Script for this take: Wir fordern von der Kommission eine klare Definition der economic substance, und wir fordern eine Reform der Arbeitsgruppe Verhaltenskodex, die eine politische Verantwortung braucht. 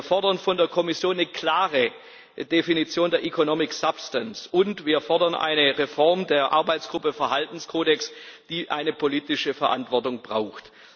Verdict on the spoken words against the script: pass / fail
pass